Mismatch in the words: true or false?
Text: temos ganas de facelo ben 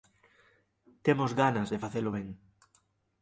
false